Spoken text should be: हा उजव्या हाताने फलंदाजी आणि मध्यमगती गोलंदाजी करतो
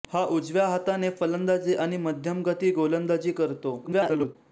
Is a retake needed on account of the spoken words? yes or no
yes